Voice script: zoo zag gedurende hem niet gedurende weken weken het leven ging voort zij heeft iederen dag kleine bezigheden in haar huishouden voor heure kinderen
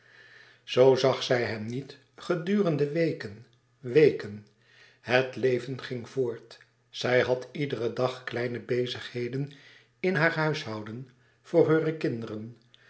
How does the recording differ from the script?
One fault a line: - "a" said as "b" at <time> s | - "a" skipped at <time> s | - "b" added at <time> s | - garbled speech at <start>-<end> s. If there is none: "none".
- "gedurende" said as "zij" at 1.2 s
- "heeft" said as "had" at 7.2 s